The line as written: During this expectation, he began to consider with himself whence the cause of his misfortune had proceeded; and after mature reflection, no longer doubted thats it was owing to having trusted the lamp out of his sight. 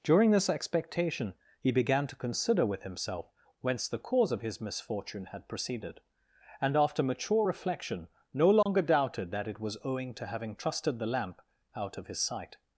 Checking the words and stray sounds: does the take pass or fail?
fail